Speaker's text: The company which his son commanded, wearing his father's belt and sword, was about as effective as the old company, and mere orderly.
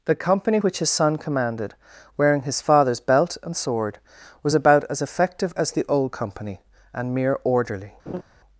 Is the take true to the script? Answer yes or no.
yes